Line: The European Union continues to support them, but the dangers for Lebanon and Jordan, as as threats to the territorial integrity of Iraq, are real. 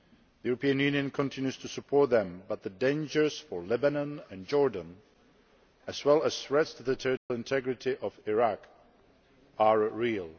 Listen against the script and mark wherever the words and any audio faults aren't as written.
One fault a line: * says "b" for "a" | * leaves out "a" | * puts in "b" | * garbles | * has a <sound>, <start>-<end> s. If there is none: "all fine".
* puts in "well"
* has a dropout, 7.2-7.3 s